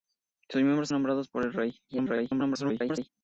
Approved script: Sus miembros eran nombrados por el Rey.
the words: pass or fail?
fail